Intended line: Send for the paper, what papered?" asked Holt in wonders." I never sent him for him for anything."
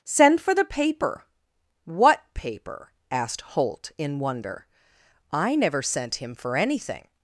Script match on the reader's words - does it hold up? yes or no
no